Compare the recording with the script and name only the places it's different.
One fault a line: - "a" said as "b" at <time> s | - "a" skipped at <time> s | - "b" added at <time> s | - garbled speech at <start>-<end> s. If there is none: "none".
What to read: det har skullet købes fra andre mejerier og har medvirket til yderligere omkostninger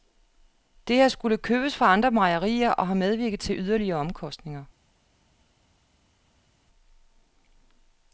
none